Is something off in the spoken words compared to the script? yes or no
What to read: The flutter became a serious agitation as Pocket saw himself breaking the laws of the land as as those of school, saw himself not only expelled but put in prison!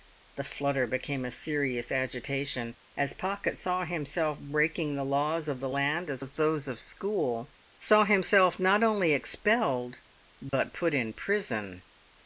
no